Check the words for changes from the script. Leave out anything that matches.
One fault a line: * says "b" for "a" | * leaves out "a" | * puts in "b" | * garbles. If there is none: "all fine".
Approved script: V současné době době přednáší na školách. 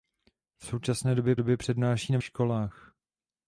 all fine